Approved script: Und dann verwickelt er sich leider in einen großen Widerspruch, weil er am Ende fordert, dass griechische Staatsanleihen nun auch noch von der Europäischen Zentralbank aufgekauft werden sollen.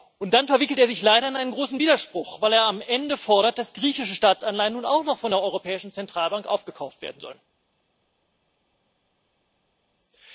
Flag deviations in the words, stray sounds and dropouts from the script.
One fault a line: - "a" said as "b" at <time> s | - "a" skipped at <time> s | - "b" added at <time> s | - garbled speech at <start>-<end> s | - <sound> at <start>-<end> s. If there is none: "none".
none